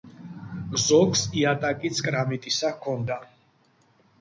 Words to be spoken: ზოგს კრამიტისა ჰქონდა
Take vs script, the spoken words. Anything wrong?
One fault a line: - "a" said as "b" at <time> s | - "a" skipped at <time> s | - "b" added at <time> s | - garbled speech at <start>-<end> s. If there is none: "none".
- "იატაკიც" added at 1.4 s